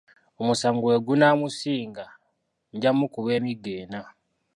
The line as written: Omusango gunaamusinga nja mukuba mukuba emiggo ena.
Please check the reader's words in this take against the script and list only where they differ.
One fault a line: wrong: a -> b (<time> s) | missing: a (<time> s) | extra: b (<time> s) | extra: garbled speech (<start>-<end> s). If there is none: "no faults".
extra: bwe (0.8 s)
missing: mukuba (3.3 s)